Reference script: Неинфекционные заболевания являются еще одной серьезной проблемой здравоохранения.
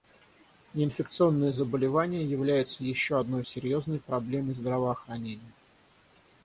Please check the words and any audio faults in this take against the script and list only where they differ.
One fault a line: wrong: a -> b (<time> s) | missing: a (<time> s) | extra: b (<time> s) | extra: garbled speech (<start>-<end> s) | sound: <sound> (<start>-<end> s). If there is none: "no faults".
no faults